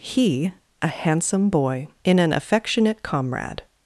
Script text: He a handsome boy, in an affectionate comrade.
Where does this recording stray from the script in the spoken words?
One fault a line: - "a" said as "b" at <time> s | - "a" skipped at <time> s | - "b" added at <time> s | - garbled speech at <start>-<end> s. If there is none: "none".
none